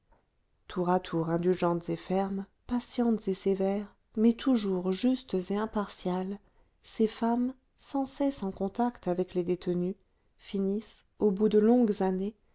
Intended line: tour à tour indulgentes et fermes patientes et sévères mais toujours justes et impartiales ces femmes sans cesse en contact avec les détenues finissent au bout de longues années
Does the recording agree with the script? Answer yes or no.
yes